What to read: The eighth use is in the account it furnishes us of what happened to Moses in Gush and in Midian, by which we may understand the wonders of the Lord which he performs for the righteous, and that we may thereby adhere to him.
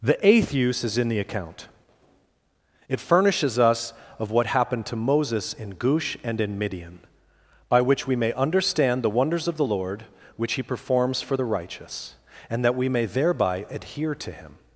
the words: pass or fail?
pass